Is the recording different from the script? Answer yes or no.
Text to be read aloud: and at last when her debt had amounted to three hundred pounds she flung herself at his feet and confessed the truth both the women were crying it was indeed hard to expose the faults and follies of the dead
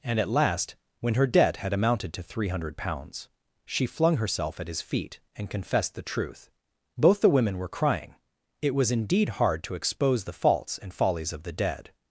no